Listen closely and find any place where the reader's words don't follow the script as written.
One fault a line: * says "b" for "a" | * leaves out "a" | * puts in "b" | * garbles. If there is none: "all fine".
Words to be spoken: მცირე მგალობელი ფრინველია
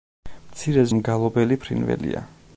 all fine